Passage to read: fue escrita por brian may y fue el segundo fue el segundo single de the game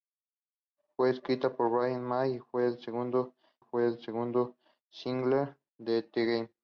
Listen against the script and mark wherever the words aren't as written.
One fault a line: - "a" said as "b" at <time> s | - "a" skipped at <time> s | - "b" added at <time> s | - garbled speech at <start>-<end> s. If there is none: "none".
none